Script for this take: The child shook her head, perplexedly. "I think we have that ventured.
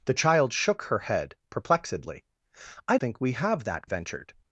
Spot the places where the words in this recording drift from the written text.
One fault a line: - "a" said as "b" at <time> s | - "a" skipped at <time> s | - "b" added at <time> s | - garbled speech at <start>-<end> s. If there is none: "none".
none